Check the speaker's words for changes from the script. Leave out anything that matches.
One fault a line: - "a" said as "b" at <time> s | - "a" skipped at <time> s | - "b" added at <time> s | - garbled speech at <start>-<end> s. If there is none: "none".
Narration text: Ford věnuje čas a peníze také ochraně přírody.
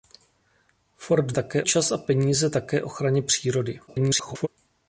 - "věnuje" said as "také" at 1.3 s
- garbled speech at 3.9-4.5 s